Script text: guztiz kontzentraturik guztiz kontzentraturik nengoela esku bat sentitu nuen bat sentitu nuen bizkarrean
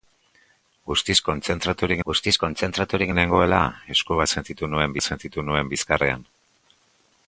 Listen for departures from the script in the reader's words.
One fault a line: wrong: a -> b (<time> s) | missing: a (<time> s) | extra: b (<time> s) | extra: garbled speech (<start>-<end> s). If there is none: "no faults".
no faults